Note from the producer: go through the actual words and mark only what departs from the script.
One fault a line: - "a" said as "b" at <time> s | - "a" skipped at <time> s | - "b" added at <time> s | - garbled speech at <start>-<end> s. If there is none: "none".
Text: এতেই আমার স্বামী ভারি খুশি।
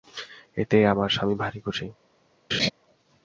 none